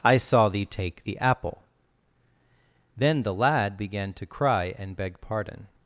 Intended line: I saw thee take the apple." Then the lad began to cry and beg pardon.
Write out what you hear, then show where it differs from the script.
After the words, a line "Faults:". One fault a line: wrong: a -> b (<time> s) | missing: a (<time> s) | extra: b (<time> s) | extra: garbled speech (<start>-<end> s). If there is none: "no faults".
I saw thee take the apple." Then the lad began to cry and beg pardon.
Faults:
no faults